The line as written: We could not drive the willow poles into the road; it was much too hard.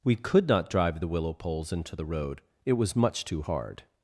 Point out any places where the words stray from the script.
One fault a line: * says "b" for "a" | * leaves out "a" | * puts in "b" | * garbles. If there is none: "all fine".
all fine